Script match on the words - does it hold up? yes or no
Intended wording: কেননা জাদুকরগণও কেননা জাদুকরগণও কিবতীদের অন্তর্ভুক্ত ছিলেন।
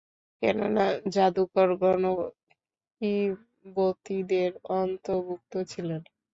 no